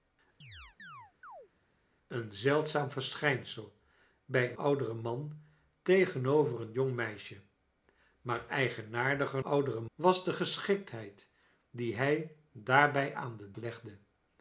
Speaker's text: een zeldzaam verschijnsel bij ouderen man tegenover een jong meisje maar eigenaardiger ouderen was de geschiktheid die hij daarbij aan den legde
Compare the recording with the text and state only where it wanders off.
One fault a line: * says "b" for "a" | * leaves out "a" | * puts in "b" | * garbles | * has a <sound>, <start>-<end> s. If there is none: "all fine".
* has a chirp, 0.4-1.5 s